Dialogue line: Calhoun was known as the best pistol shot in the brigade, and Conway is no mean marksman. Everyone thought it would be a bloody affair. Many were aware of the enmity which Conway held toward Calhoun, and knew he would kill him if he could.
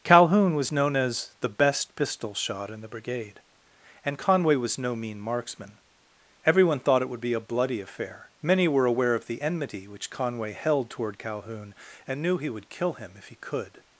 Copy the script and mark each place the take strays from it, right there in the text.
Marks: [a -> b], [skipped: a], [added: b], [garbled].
Calhoun was known as the best pistol shot in the brigade, and Conway [is -> was] no mean marksman. Everyone thought it would be a bloody affair. Many were aware of the enmity which Conway held toward Calhoun, and knew he would kill him if he could.